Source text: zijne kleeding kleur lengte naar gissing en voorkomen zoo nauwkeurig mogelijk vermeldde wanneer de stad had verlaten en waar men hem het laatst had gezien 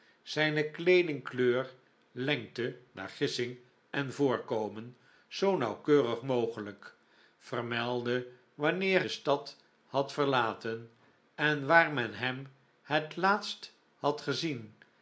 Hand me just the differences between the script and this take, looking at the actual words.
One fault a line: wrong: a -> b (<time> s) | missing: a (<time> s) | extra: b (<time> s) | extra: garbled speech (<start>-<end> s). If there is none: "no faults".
no faults